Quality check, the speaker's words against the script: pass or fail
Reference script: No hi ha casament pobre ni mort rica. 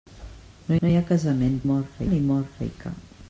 fail